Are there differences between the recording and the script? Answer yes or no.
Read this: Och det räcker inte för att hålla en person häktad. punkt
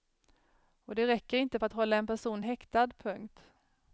no